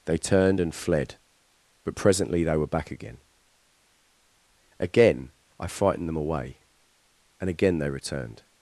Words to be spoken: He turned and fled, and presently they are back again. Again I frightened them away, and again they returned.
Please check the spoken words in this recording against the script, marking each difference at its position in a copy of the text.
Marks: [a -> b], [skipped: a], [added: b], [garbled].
[He -> They] turned and fled, [and -> but] presently they [are -> were] back again. Again I frightened them away, and again they returned.